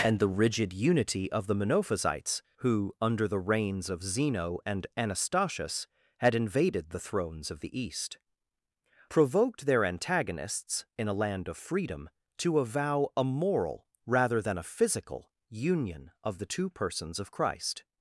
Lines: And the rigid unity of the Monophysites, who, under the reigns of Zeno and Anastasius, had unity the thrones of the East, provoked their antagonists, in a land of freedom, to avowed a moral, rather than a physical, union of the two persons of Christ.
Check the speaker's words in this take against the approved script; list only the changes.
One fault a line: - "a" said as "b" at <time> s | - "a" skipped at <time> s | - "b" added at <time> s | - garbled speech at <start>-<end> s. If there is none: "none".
- "unity" said as "invaded" at 6.3 s
- "avowed" said as "avow" at 12.6 s